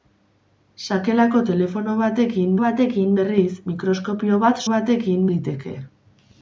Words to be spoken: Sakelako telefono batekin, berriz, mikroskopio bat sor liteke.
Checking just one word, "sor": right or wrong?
wrong